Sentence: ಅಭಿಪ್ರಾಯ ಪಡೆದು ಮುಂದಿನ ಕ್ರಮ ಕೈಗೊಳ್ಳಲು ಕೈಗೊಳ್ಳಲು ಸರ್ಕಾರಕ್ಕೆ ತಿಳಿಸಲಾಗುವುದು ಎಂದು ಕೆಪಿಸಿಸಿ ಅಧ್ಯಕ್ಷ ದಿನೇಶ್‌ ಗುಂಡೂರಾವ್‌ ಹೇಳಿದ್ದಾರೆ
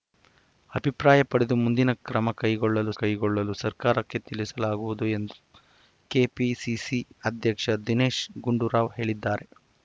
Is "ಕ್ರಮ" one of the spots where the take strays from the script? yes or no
no